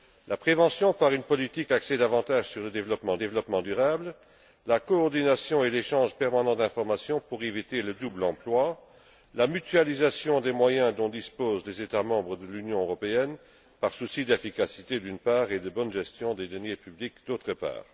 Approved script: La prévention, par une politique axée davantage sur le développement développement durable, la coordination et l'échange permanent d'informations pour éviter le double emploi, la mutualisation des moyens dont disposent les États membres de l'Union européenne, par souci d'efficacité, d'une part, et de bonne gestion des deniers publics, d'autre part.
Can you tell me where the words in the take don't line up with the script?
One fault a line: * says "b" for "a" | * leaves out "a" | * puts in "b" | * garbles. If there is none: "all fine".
all fine